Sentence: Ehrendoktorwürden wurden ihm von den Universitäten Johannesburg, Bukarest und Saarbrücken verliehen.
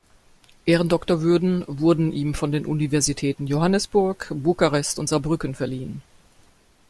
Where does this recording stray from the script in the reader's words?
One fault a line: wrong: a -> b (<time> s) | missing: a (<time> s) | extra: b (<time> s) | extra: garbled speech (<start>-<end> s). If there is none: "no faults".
no faults